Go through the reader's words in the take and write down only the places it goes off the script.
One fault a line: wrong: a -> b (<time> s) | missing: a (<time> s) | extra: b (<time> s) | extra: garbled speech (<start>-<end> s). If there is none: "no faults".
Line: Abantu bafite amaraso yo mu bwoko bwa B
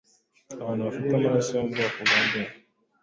no faults